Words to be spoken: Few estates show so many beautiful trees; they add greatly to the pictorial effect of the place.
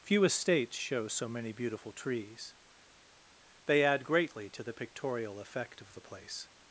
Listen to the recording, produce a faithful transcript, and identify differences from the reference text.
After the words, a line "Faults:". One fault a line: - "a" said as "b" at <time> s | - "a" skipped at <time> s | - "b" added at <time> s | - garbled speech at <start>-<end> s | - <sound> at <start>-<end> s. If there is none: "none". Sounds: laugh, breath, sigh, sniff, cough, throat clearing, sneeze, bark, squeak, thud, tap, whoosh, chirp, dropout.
Few estates show so many beautiful trees; they add greatly to the pictorial effect of the place.
Faults:
none